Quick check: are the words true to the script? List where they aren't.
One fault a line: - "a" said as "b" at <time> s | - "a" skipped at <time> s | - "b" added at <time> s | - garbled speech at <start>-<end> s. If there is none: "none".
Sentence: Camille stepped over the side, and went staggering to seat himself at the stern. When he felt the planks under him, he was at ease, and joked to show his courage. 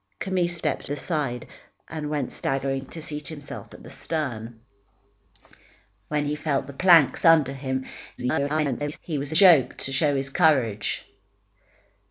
- "over" skipped at 0.9 s
- garbled speech at 8.2-9.0 s
- "at ease and" skipped at 9.3 s